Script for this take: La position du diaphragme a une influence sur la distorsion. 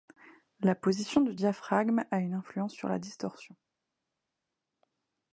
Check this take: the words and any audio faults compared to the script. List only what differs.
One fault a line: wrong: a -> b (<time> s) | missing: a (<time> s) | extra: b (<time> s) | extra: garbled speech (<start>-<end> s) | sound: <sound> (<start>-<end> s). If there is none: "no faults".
no faults